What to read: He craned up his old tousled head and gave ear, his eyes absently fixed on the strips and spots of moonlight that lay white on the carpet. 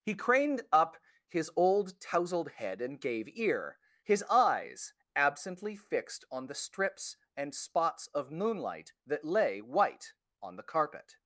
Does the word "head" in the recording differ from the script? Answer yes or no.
no